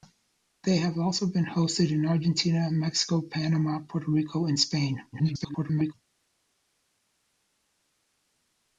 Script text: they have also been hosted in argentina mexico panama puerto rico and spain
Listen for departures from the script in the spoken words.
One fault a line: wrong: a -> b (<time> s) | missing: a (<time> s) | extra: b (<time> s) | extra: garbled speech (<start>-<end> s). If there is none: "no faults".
extra: garbled speech (5.1-5.9 s)